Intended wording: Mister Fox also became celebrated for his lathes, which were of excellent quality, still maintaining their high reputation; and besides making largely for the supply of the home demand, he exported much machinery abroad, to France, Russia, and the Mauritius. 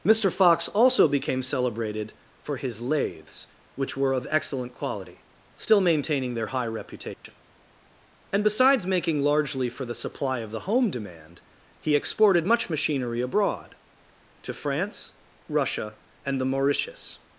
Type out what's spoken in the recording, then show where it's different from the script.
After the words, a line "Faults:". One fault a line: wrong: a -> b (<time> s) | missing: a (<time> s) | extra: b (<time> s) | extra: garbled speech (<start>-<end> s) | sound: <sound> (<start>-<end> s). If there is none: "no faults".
Mister Fox also became celebrated for his lathes, which were of excellent quality, still maintaining their high reputation; and besides making largely for the supply of the home demand, he exported much machinery abroad, to France, Russia, and the Mauritius.
Faults:
sound: dropout (7.1-7.2 s)